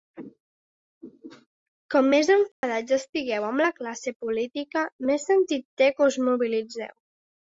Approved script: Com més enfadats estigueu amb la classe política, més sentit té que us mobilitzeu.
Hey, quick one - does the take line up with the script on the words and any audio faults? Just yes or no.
no